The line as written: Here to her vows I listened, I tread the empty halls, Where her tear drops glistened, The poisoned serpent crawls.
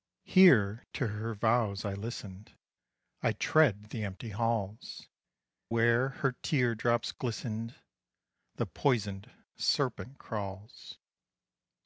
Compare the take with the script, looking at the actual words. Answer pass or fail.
pass